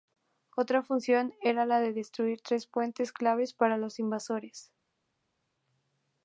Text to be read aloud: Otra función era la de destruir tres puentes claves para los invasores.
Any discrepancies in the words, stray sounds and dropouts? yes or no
no